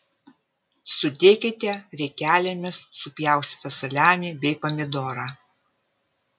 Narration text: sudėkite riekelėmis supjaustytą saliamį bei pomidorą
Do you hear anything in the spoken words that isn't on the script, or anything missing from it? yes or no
no